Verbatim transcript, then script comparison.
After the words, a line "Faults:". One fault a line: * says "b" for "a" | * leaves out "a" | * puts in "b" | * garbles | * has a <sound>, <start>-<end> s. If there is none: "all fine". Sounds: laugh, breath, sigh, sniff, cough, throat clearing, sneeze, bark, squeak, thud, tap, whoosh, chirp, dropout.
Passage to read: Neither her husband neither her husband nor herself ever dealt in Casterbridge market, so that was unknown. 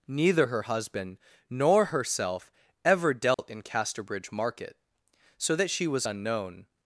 Neither her husband nor herself ever dealt in Casterbridge market, so that she was unknown.
Faults:
* leaves out "neither her husband"
* has a dropout, 3.3-3.4 s
* puts in "she"